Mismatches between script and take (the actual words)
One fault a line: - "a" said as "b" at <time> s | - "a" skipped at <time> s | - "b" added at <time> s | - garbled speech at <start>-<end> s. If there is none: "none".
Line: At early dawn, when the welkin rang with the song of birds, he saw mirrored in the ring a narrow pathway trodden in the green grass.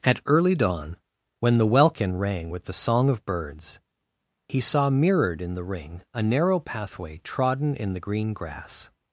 none